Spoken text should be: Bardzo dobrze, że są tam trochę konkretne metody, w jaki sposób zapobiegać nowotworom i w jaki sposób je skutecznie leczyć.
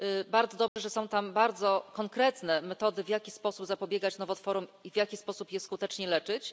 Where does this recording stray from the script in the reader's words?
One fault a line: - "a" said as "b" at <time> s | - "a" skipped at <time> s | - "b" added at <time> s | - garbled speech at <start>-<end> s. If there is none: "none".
- "trochę" said as "bardzo" at 1.3 s